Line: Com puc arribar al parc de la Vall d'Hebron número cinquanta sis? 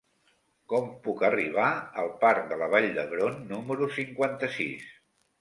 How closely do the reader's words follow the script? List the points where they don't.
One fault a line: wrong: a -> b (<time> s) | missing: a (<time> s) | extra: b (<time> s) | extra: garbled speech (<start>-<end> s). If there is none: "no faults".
no faults